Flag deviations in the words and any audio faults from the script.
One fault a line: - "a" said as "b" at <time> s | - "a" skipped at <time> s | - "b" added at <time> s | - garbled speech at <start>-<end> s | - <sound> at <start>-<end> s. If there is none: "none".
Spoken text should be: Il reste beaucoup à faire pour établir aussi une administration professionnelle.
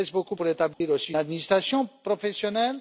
- "à faire" skipped at 0.3 s
- dropout at 0.7-0.8 s
- "une" skipped at 1.1 s